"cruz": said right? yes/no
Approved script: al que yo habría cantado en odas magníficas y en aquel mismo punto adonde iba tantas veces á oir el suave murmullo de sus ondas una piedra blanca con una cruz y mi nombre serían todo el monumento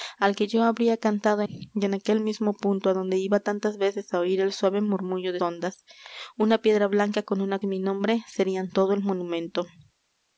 no